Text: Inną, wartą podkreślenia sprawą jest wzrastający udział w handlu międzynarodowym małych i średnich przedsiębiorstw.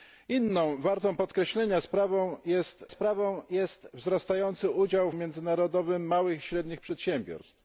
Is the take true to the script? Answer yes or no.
no